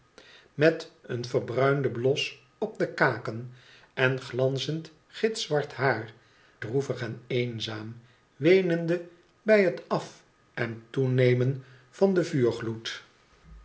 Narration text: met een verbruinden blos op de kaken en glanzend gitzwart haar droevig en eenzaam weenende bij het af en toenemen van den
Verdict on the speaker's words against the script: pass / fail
pass